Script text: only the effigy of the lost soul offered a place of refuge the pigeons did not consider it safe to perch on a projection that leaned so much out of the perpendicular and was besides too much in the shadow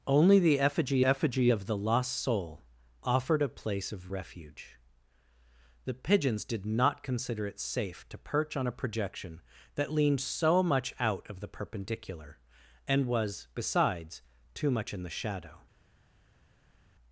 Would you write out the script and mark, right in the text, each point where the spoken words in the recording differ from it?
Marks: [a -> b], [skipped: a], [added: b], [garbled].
only the effigy [added: effigy] of the lost soul offered a place of refuge the pigeons did not consider it safe to perch on a projection that leaned so much out of the perpendicular and was besides too much in the shadow